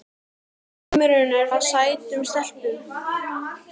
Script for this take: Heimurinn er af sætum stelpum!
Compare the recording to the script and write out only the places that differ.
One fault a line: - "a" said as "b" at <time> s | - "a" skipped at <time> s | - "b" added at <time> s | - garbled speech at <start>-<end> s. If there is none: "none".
none